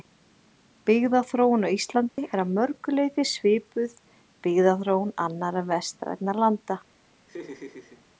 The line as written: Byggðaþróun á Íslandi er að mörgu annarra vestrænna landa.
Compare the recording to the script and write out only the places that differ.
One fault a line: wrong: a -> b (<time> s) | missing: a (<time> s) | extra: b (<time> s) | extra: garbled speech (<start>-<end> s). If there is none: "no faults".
extra: leyti svipuð byggðaþróun (3.0 s)